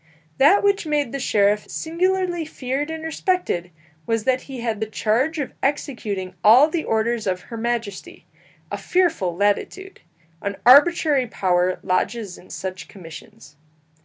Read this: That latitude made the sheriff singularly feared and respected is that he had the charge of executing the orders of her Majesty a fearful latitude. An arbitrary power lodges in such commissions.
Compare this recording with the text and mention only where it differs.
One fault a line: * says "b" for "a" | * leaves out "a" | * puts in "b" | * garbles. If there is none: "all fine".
* says "which" for "latitude"
* says "was" for "is"
* puts in "all"